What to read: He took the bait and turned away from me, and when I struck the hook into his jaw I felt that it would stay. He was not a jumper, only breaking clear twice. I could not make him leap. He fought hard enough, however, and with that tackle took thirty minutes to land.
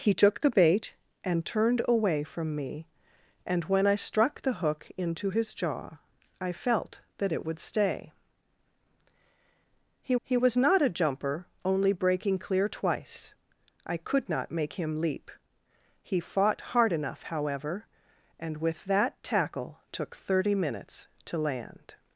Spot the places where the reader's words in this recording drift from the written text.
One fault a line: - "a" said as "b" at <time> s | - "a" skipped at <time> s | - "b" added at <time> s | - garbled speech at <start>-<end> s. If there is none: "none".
- "he" added at 10.2 s